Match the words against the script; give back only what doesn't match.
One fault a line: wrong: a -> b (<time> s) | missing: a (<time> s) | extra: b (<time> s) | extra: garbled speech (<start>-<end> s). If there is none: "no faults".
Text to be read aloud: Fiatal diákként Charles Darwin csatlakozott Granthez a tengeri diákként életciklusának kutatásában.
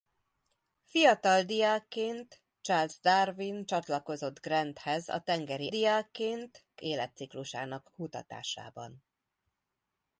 no faults